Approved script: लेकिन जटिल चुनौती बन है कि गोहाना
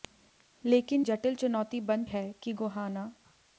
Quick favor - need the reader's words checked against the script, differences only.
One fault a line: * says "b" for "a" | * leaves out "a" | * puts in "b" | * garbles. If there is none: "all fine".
all fine